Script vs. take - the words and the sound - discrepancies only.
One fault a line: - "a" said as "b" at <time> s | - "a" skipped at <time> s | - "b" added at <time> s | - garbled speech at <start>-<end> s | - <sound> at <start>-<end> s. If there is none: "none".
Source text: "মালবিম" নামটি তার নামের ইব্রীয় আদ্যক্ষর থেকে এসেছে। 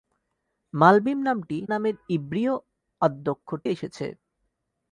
- "তার" skipped at 1.6 s
- "থেকে" skipped at 3.6 s